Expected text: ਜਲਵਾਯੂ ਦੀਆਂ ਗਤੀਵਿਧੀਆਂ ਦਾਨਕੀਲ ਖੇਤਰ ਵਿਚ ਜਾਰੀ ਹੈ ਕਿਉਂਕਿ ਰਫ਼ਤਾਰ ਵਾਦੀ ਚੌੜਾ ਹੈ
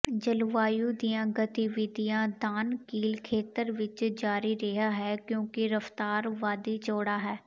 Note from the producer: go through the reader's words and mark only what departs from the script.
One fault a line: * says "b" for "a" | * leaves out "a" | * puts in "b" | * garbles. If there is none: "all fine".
* puts in "ਰਿਹਾ"